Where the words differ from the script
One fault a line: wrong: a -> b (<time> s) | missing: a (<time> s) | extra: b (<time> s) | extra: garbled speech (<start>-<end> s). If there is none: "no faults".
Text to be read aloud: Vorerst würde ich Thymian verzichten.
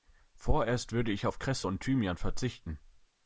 extra: auf Kresse und (1.3 s)